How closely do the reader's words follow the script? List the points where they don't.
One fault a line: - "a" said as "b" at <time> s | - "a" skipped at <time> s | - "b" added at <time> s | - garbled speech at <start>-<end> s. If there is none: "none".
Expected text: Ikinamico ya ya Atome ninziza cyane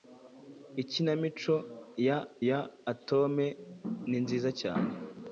none